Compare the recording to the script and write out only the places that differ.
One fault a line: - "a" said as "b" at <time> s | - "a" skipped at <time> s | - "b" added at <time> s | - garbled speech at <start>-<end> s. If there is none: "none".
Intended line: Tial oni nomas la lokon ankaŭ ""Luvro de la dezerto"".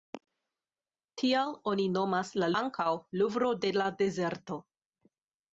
- "lokon" skipped at 2.5 s